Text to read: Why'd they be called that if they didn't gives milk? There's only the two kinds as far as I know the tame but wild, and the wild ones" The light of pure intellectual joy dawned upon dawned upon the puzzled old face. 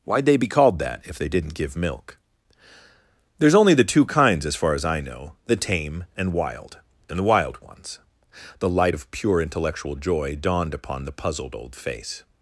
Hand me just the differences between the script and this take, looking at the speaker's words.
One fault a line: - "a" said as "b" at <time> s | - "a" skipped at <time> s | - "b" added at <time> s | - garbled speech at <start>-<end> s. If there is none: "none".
- "gives" said as "give" at 1.5 s
- "but" said as "and" at 6.2 s
- "dawned upon" skipped at 11.0 s